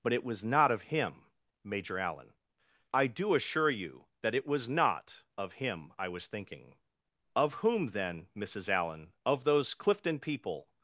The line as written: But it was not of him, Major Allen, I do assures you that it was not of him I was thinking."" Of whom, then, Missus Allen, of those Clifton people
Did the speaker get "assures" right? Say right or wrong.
wrong